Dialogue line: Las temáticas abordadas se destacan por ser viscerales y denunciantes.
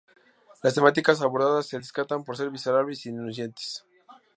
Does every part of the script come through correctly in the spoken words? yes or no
yes